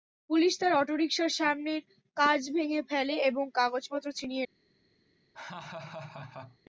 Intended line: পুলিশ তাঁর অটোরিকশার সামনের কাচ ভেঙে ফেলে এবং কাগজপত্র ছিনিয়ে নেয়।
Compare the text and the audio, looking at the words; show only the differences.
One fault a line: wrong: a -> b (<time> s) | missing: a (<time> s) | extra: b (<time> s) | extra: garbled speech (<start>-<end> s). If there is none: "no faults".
no faults